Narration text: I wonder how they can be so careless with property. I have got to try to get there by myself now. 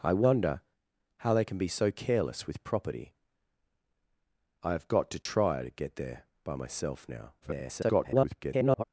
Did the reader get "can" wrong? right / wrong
right